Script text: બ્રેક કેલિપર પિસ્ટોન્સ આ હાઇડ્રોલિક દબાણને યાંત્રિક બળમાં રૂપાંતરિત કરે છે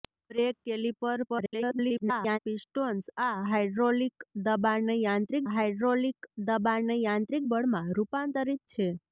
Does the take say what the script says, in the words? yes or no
no